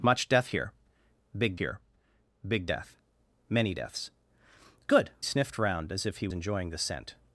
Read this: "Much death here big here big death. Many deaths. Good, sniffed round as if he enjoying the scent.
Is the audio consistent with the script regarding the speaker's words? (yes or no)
yes